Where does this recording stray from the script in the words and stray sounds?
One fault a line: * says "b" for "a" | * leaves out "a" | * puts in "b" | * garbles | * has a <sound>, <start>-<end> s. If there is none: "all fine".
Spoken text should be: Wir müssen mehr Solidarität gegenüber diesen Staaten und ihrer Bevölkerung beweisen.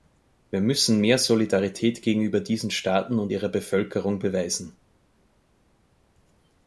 all fine